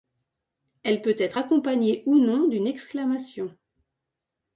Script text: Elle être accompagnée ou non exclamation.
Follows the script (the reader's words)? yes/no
no